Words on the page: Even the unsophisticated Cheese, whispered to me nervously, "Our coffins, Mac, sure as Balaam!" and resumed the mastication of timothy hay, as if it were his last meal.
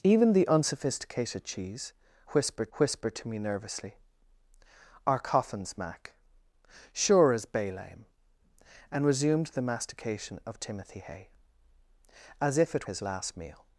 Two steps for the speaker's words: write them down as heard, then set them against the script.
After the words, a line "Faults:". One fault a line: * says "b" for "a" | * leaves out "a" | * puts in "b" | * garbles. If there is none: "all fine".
Even the unsophisticated Cheese, whispered whispered to me nervously, "Our coffins, Mac, sure as Balaam!" and resumed the mastication of timothy hay, as if it his last meal.
Faults:
* puts in "whispered"
* leaves out "were"